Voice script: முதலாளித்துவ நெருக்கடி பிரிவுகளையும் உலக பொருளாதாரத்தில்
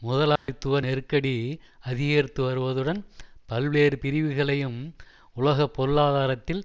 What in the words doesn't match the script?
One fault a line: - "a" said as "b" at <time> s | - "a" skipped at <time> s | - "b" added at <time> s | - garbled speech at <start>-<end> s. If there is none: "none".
- "அதிகரித்து வருவதுடன் பல்வேறு" added at 1.8 s